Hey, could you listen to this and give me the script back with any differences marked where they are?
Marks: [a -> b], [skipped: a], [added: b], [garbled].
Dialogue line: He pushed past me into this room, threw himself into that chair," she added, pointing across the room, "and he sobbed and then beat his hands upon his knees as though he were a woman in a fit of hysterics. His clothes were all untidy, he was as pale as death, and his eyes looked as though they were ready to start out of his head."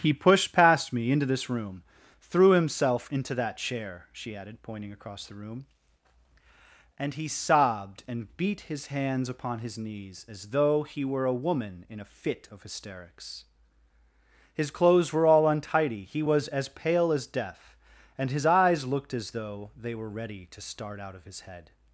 He pushed past me into this room, threw himself into that chair," she added, pointing across the room, "and he sobbed and [skipped: then] beat his hands upon his knees as though he were a woman in a fit of hysterics. His clothes were all untidy, he was as pale as death, and his eyes looked as though they were ready to start out of his head."